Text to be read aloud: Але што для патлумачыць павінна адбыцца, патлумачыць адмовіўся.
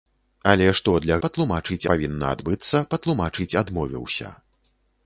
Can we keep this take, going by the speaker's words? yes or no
yes